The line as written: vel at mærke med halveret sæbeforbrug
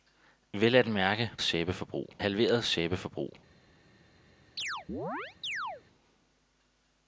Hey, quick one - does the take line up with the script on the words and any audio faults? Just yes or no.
no